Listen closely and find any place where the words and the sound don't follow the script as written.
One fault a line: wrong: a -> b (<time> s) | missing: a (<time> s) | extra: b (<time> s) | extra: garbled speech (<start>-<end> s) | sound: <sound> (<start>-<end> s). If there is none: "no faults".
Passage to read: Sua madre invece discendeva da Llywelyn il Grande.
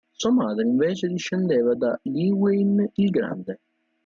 no faults